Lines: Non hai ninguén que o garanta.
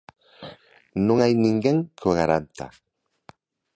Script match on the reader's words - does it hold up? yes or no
yes